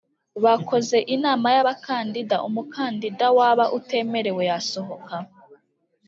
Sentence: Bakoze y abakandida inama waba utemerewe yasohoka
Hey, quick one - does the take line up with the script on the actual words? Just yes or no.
no